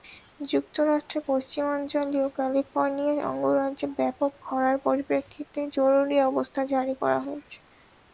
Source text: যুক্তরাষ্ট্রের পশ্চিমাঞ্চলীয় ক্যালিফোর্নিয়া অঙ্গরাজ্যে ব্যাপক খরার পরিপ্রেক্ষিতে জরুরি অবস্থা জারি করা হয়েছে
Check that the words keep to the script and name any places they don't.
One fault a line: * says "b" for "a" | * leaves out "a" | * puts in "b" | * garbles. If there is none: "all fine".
all fine